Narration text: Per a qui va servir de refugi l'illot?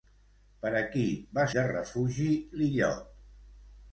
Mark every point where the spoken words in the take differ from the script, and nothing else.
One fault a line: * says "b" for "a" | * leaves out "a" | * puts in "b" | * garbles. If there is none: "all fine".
* leaves out "servir"